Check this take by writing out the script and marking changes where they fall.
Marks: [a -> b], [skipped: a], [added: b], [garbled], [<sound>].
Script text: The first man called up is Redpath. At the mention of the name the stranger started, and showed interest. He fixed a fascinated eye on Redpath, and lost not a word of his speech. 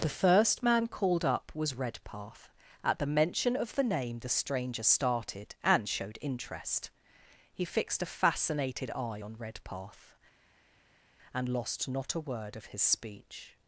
The first man called up [is -> was] Redpath. At the mention of the name the stranger started, and showed interest. He fixed a fascinated eye on Redpath, and lost not a word of his speech.